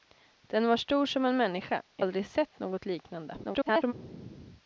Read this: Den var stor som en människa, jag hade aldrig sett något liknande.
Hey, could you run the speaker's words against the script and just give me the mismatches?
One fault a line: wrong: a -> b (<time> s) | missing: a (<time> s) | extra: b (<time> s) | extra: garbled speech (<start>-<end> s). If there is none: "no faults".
missing: hade (2.1 s)
extra: garbled speech (3.4-3.9 s)